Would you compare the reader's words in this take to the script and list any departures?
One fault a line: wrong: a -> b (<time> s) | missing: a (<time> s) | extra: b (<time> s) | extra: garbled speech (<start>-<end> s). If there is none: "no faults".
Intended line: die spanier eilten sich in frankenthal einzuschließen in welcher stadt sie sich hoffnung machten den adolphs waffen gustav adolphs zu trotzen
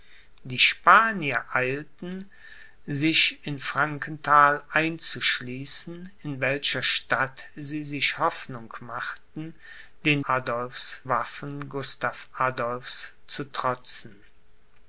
no faults